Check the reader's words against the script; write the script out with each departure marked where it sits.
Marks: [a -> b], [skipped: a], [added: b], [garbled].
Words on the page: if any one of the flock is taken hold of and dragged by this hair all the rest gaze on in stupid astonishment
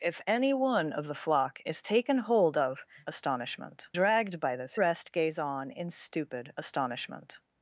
if any one of the flock is taken hold of [and -> astonishment] dragged by this [skipped: hair all the] rest gaze on in stupid astonishment